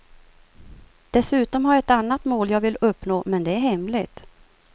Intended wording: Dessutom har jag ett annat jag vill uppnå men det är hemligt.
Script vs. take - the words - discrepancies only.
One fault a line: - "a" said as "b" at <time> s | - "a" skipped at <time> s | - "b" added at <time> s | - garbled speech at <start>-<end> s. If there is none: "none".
- "mål" added at 2.2 s